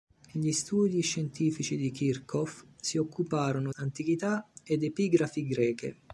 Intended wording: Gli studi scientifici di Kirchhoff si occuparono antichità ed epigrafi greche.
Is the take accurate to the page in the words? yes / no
yes